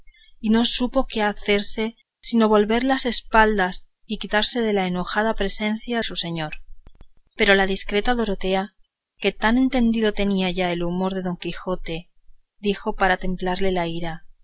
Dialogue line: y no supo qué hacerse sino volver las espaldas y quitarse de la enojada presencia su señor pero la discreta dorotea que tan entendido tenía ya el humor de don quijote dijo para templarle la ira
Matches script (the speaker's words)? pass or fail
pass